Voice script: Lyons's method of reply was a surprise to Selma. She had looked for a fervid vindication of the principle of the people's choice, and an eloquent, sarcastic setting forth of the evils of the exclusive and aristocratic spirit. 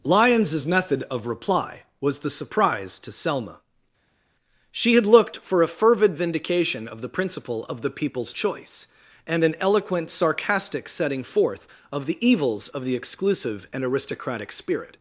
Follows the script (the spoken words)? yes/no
no